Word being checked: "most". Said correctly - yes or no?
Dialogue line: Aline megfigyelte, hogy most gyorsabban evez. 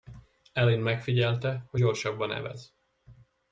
no